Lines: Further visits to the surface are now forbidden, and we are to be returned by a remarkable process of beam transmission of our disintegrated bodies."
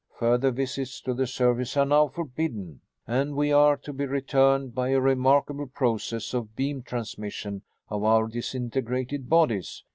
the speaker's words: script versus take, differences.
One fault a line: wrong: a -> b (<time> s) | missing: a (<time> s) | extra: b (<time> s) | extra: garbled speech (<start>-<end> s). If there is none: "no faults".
no faults